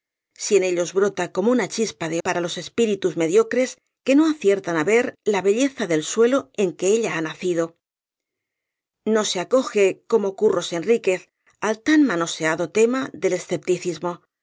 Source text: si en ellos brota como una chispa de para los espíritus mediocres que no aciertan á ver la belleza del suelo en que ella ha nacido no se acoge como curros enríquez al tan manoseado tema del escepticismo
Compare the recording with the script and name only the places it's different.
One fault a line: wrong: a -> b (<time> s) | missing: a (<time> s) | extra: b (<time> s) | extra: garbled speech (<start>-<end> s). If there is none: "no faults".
no faults